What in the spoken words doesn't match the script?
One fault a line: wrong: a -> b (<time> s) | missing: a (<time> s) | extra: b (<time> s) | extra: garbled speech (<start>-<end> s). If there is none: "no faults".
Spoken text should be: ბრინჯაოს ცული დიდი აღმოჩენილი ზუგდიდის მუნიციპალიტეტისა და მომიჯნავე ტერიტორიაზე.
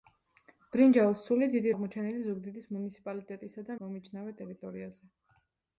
no faults